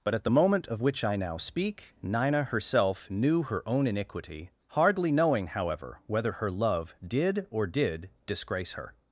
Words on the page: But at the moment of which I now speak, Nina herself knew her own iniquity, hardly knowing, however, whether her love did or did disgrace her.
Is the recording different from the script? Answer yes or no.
no